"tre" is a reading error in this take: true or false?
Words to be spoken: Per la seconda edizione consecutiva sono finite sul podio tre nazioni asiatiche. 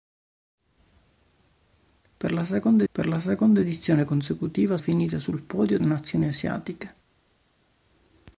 true